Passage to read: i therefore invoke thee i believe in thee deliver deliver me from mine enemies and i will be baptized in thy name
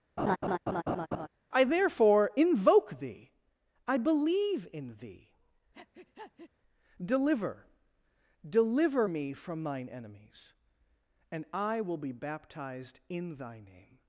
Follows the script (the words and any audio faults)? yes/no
no